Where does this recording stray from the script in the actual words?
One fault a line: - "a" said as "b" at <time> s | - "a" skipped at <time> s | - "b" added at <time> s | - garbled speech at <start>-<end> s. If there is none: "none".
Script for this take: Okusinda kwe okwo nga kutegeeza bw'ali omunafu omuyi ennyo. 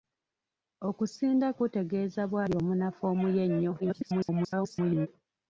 - "kwe okwo nga" skipped at 1.5 s
- garbled speech at 3.8-5.1 s